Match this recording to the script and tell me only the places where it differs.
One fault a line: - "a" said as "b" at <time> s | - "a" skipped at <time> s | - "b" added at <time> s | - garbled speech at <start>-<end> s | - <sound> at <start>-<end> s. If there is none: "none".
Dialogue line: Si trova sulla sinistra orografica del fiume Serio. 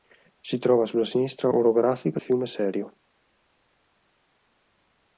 - "del" skipped at 2.2 s